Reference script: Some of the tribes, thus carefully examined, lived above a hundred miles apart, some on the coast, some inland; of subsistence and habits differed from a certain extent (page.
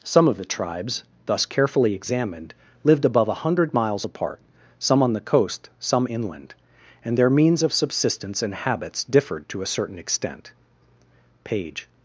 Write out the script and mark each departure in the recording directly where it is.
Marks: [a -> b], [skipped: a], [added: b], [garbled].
Some of the tribes, thus carefully examined, lived above a hundred miles apart, some on the coast, some inland; [added: and their means] of subsistence and habits differed [from -> to] a certain extent (page.